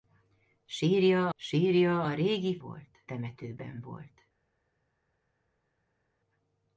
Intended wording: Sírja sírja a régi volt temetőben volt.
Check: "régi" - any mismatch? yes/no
no